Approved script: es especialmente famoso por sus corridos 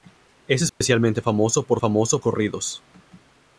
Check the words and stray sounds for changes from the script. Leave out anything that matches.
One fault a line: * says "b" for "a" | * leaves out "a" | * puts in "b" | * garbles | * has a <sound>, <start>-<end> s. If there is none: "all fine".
* has a dropout, 0.7-0.8 s
* says "famoso" for "sus"